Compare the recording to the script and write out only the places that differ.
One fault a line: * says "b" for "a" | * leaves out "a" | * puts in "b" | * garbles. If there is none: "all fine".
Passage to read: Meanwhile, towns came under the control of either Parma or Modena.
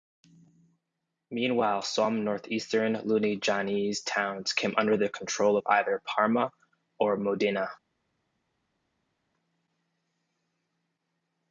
* puts in "some northeastern Lunigianese"